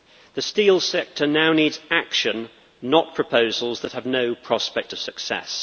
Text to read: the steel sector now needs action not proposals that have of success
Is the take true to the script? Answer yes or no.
no